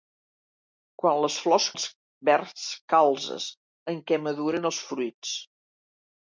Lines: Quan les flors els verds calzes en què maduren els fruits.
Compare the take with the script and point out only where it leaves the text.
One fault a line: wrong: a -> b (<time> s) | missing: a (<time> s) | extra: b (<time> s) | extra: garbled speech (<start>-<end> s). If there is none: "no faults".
no faults